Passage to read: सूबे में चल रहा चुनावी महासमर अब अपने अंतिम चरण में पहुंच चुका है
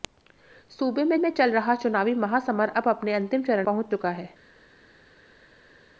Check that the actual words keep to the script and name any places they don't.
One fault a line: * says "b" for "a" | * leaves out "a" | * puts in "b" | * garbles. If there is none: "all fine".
* puts in "में"
* leaves out "में"